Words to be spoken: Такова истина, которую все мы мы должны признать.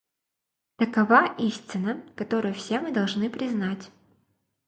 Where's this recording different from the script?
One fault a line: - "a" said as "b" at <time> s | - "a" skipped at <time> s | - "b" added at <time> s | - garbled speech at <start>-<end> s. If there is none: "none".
- "мы" skipped at 2.9 s